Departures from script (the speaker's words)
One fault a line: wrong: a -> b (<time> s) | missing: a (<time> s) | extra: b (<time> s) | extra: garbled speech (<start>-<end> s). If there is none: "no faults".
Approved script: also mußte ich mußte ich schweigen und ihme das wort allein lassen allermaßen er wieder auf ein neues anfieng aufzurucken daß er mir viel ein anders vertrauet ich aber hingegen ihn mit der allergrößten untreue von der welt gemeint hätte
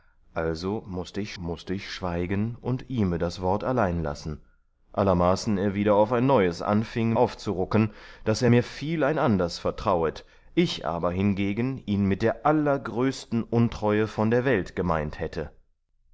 no faults